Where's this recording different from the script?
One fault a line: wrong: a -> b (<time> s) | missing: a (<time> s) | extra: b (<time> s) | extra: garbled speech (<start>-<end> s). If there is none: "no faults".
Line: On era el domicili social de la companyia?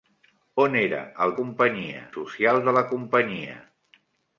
wrong: domicili -> companyia (1.4 s)